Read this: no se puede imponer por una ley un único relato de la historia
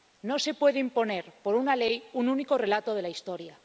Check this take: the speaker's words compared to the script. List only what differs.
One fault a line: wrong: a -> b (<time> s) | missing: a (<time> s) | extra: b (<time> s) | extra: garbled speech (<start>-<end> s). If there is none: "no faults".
no faults